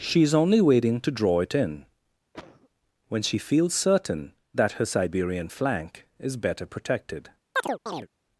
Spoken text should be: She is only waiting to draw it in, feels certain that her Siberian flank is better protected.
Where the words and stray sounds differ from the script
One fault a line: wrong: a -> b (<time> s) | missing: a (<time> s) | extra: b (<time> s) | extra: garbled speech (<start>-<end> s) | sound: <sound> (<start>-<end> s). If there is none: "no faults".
sound: cough (2.3-2.7 s)
extra: when she (3.1 s)
sound: chirp (7.6-8.1 s)